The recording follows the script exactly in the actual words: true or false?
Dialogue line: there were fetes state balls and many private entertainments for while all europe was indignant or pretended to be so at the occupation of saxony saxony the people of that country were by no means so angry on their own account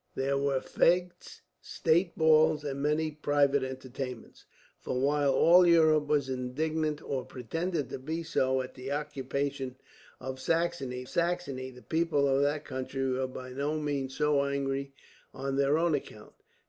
true